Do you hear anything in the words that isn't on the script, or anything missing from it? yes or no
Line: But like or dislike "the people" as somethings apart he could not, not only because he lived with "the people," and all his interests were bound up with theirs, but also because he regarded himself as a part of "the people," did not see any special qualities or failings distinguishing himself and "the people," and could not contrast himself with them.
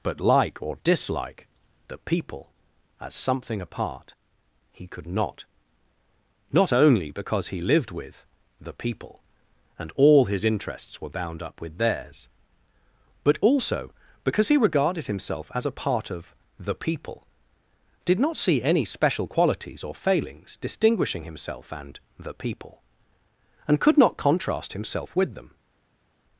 yes